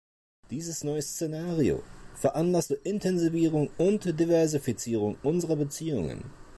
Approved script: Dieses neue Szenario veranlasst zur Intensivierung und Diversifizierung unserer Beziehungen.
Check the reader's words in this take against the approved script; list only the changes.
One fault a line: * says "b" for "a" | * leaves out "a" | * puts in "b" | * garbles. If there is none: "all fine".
all fine